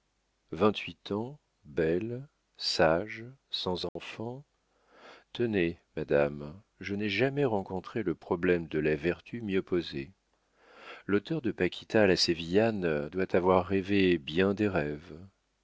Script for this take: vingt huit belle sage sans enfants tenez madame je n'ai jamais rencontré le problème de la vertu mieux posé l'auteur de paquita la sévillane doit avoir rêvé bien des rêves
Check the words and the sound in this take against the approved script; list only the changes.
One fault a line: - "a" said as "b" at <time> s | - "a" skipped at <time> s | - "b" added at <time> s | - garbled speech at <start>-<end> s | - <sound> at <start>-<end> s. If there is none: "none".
- "ans" added at 1.1 s
- dropout at 3.9-4.0 s